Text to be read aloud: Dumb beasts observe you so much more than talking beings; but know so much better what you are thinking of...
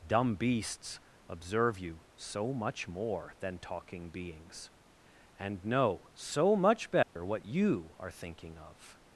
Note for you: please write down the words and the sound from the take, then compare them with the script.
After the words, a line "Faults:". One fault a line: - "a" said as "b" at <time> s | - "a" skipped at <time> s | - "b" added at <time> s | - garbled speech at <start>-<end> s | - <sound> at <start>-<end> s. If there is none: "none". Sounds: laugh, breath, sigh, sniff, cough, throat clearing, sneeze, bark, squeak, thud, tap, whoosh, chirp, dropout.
Dumb beasts observe you so much more than talking beings; and know so much better what you are thinking of...
Faults:
- "but" said as "and" at 5.4 s
- dropout at 7.0-7.2 s